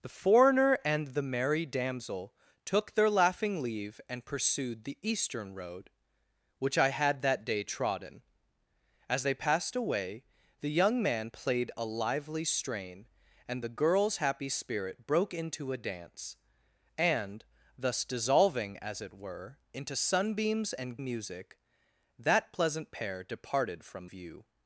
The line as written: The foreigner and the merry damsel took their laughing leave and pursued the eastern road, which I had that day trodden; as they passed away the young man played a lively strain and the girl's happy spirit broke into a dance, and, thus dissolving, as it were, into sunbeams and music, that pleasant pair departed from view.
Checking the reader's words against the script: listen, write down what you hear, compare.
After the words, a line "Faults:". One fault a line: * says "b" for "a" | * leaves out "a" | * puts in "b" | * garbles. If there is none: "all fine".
The foreigner and the merry damsel took their laughing leave and pursued the eastern road, which I had that day trodden; as they passed away the young man played a lively strain and the girl's happy spirit broke into a dance, and, thus dissolving, as it were, into sunbeams and music, that pleasant pair departed from view.
Faults:
all fine